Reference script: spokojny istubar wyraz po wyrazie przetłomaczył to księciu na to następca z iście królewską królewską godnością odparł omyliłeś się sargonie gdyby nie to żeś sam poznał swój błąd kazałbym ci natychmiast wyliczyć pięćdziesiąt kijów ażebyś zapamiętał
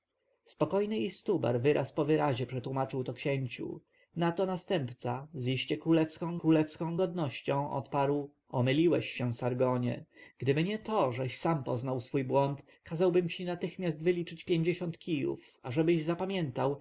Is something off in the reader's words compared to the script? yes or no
no